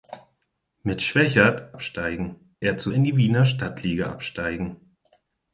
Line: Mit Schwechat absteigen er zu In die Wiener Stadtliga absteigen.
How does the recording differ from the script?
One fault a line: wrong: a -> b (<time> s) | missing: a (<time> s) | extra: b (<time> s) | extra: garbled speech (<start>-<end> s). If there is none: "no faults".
no faults